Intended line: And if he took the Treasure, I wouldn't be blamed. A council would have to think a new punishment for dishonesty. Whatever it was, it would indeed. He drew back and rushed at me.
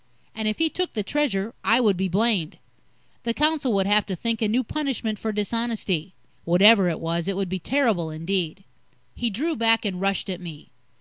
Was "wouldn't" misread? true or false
true